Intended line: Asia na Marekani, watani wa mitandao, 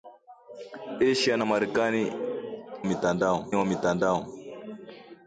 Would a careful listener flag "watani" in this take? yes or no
yes